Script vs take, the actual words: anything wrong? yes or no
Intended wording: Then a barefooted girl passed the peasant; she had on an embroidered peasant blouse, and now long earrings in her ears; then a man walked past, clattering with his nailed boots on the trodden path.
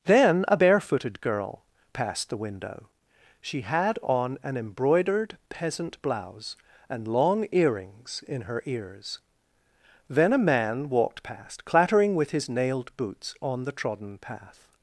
yes